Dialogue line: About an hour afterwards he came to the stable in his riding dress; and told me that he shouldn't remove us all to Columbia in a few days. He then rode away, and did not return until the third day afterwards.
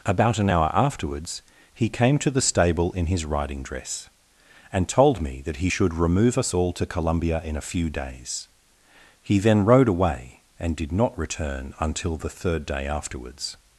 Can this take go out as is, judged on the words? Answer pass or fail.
fail